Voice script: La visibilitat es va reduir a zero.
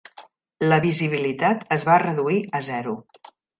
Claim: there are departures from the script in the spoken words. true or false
false